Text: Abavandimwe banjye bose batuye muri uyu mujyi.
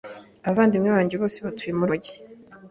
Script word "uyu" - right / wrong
wrong